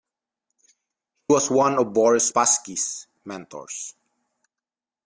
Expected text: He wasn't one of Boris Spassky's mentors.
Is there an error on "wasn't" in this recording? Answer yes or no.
yes